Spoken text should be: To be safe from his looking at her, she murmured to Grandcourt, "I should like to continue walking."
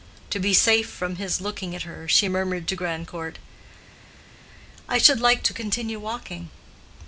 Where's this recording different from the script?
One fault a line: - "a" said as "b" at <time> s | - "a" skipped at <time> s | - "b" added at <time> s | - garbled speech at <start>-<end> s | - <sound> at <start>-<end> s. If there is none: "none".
none